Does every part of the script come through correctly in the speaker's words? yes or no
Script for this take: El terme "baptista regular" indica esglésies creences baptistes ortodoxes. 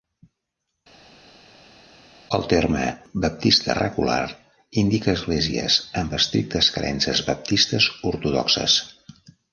no